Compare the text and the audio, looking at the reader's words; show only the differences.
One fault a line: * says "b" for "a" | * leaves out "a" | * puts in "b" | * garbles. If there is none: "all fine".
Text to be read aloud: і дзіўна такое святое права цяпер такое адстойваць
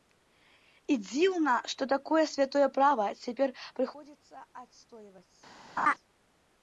* puts in "што"
* says "прыходзіцца" for "такое"